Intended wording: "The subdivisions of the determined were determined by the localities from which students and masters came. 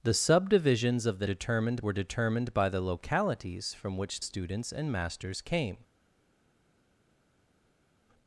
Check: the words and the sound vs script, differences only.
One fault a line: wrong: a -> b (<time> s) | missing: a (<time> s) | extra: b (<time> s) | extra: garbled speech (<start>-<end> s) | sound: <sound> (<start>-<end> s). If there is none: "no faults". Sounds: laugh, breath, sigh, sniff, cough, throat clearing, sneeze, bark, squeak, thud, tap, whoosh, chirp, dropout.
no faults